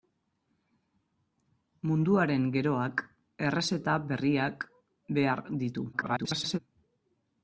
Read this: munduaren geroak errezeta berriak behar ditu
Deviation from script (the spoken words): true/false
true